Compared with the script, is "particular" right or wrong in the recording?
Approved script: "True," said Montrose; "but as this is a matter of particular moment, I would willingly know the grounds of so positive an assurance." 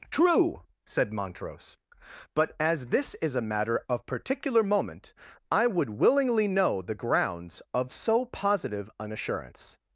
right